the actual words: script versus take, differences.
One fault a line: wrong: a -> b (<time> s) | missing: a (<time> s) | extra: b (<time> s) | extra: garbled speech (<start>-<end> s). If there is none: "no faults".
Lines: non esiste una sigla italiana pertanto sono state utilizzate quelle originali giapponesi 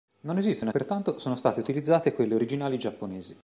missing: sigla italiana (0.7 s)